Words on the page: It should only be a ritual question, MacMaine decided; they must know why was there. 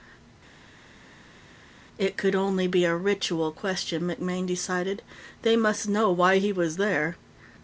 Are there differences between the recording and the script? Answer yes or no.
yes